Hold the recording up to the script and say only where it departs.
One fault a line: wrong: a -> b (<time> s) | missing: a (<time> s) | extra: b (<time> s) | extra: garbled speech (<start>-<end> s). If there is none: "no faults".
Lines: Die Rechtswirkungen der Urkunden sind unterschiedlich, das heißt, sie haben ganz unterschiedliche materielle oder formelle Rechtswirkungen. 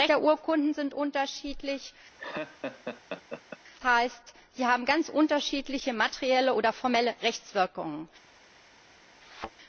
missing: Rechtswirkungen (0.1 s)
missing: das (1.9 s)